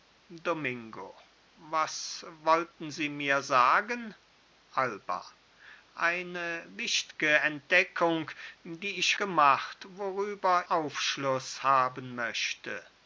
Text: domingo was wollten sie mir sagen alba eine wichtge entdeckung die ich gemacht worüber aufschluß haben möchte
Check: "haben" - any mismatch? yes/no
no